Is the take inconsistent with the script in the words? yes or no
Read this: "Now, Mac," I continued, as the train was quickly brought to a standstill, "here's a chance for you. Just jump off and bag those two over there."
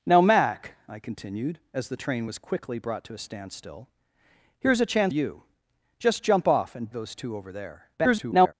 yes